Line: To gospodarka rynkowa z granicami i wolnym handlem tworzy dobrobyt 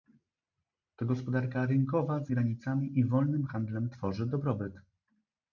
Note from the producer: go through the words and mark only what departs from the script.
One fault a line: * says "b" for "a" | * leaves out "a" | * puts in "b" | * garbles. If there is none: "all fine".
all fine